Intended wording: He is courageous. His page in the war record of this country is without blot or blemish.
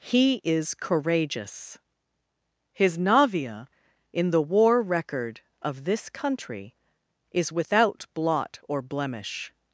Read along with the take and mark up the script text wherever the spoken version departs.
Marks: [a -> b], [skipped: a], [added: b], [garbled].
He is courageous. His [page -> navia] in the war record of this country is without blot or blemish.